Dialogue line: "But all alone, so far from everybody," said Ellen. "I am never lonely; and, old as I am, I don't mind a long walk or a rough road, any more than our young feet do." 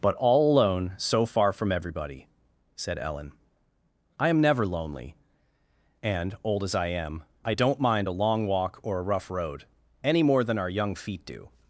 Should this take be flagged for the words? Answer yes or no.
no